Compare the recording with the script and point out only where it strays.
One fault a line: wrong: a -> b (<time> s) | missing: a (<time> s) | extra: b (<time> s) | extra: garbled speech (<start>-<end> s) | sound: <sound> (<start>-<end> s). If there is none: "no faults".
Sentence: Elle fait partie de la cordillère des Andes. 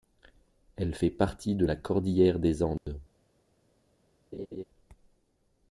sound: dropout (2.8-2.9 s)
sound: laugh (4.3-4.6 s)